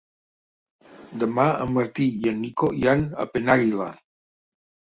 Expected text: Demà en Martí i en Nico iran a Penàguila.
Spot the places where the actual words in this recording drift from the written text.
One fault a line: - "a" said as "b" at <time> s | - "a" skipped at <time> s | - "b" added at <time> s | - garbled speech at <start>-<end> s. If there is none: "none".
none